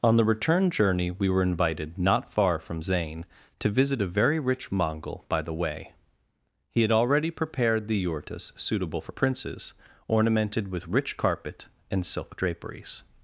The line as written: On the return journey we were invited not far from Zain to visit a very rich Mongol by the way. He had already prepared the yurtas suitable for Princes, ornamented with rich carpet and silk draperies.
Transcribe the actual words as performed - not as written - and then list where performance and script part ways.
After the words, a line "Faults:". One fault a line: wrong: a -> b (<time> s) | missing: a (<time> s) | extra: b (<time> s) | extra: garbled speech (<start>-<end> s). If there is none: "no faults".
On the return journey we were invited not far from Zain to visit a very rich Mongol by the way. He had already prepared the yurtas suitable for Princes, ornamented with rich carpet and silk draperies.
Faults:
no faults